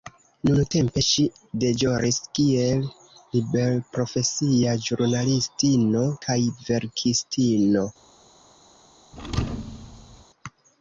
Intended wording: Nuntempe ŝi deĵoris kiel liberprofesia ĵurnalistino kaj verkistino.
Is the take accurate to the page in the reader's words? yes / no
yes